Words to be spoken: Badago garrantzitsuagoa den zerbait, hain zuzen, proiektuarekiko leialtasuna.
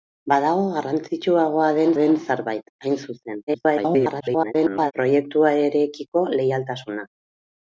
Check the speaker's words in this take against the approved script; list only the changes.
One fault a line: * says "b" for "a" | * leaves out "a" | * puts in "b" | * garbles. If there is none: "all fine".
* puts in "den"
* garbles